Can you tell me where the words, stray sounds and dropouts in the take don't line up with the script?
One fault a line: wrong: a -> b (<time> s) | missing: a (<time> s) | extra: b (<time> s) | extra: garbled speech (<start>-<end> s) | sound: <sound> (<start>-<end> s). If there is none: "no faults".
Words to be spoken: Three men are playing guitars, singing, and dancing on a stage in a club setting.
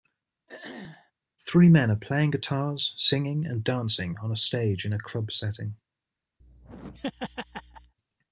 sound: throat clearing (0.5-1.1 s)
sound: laugh (6.4-7.9 s)